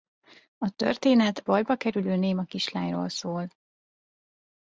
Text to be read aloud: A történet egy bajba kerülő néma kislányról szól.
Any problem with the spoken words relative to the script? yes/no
yes